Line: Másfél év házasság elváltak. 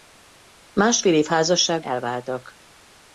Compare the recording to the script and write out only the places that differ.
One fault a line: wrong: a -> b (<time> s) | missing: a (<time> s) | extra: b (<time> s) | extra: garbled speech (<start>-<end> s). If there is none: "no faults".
no faults